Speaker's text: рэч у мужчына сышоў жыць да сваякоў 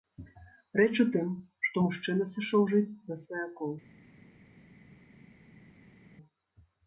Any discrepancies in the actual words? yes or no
yes